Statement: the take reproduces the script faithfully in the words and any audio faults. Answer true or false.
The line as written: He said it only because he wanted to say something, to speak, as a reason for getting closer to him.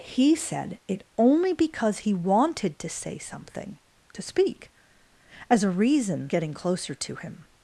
false